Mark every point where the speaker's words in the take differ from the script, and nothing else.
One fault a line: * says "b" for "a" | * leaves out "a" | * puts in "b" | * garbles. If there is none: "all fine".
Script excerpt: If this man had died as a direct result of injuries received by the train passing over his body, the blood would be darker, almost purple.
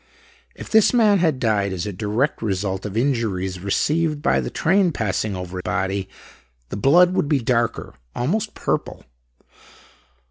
* leaves out "his"